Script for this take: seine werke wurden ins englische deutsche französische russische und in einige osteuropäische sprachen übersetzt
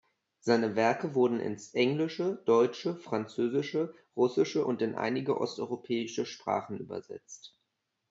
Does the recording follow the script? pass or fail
pass